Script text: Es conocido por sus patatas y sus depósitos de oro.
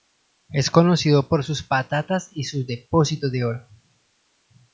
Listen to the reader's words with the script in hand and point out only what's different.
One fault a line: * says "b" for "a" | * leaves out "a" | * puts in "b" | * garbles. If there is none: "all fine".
all fine